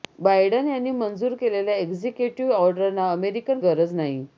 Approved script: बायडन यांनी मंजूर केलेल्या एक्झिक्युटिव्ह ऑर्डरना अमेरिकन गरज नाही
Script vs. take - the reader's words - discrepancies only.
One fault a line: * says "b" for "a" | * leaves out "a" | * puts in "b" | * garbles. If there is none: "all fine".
all fine